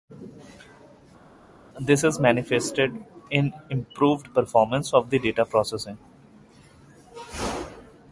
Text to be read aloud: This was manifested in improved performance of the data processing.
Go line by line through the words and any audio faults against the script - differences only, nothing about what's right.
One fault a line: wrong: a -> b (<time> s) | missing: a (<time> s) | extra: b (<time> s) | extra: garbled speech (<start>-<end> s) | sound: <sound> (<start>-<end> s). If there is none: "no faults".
wrong: was -> is (2.0 s)